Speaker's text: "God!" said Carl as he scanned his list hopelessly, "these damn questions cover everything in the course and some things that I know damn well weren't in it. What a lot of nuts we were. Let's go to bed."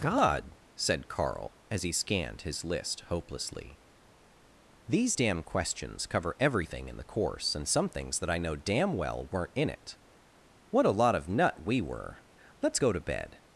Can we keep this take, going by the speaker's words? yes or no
no